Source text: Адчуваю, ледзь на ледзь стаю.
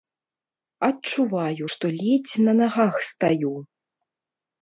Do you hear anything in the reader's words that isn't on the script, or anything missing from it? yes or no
yes